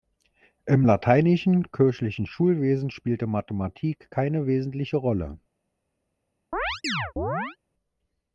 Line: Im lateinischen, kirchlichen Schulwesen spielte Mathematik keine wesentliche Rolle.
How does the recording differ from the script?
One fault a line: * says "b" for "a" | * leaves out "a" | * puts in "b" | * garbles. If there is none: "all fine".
all fine